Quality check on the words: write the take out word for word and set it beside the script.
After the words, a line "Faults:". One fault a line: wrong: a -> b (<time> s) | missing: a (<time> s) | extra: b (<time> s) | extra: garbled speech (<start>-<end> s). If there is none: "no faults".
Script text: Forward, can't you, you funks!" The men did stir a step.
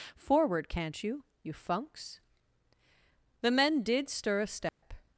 Forward, can't you, you funks!" The men did stir a step.
Faults:
no faults